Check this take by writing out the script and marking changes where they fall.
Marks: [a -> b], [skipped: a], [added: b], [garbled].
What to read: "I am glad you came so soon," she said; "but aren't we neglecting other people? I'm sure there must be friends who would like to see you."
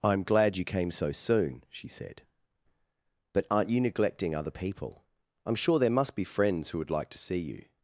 "I am glad you came so soon," she said; "but aren't [we -> you] neglecting other people? I'm sure there must be friends who would like to see you."